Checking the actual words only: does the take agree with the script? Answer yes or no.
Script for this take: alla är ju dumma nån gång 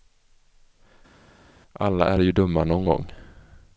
yes